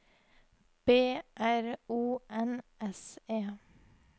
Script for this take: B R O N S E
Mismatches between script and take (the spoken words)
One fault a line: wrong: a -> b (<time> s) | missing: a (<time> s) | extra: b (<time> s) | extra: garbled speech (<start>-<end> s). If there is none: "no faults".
no faults